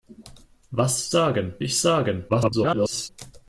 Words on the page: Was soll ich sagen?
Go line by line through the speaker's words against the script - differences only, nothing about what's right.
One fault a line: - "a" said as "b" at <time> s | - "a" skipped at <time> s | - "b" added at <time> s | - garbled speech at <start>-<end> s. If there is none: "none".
- "soll" said as "sagen" at 1.1 s
- garbled speech at 2.3-3.1 s